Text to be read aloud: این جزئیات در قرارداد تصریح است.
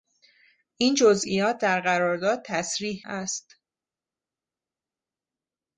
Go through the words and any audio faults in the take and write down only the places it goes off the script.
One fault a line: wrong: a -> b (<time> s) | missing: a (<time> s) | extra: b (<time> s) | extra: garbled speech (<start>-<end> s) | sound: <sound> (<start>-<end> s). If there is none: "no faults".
no faults